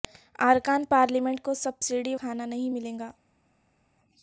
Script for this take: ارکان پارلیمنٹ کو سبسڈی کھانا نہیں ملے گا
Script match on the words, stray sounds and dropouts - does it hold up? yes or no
yes